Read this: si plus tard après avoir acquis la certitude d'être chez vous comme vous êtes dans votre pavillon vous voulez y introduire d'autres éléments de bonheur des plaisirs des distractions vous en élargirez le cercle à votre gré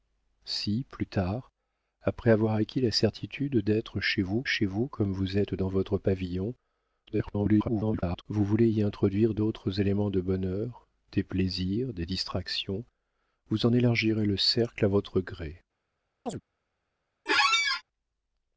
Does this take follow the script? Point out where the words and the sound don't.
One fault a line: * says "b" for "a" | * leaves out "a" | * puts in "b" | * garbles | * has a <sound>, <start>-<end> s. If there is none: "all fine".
* puts in "chez vous"
* garbles
* has a chirp, 16.3-16.4 s
* has a squeak, 17.3-17.8 s